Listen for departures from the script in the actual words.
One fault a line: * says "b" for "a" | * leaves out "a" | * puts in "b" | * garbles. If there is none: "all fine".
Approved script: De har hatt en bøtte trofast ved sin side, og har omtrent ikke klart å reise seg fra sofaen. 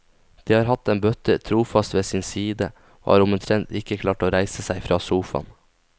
all fine